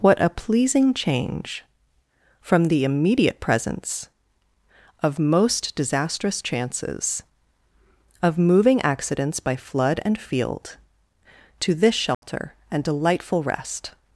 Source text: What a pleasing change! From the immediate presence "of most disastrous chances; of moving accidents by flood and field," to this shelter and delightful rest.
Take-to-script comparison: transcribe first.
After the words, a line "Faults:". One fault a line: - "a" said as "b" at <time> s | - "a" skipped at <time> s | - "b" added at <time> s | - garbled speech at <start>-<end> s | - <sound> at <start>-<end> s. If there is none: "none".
What a pleasing change! From the immediate presence "of most disastrous chances; of moving accidents by flood and field," to this shelter and delightful rest.
Faults:
- dropout at 12.1-12.2 s